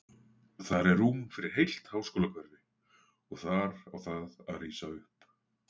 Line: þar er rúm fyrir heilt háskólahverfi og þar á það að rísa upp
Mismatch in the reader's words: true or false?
false